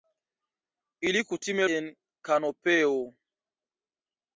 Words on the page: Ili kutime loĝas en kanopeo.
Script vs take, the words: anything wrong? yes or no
yes